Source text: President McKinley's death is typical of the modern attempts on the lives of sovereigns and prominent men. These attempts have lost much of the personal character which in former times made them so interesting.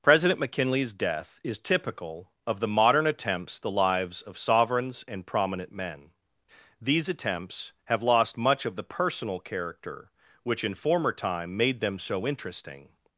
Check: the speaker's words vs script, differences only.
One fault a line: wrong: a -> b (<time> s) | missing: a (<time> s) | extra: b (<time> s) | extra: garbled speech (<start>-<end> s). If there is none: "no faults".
missing: on (3.6 s)
wrong: times -> time (11.1 s)